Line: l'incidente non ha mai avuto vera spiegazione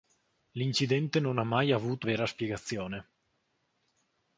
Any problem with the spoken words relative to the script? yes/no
no